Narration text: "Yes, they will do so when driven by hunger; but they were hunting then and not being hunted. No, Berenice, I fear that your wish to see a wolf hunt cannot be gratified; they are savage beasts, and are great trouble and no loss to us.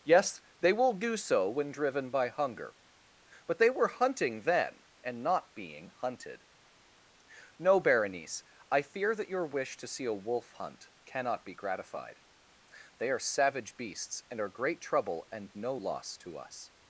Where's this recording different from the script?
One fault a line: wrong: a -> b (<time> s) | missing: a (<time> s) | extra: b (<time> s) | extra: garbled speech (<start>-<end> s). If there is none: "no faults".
no faults